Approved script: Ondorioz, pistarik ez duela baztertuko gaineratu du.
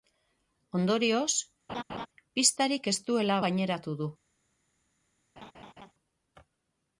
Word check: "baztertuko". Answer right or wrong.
wrong